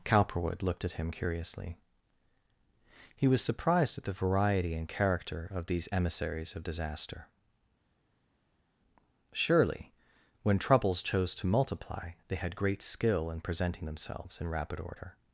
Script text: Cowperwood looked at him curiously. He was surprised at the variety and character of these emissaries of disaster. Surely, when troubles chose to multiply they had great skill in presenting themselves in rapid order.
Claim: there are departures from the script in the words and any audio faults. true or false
false